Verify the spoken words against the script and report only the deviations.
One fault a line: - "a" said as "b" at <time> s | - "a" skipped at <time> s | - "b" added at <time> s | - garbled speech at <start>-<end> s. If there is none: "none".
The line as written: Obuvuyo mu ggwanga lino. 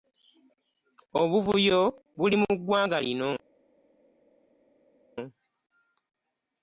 - "buli" added at 2.2 s